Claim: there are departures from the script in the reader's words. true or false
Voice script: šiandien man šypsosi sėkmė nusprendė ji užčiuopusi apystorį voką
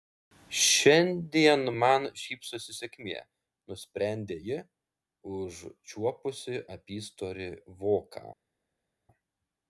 false